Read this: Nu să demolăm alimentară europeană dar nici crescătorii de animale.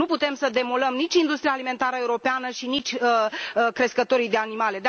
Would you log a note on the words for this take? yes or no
yes